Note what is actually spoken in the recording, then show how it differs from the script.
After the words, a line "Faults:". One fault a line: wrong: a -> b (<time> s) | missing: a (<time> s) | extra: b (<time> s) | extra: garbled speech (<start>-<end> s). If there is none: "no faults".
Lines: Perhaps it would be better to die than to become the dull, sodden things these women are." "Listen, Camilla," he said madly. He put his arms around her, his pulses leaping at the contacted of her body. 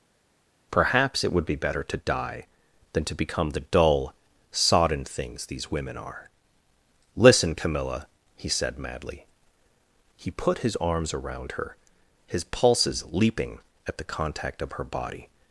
Perhaps it would be better to die than to become the dull, sodden things these women are." "Listen, Camilla," he said madly. He put his arms around her, his pulses leaping at the contact of her body.
Faults:
wrong: contacted -> contact (14.0 s)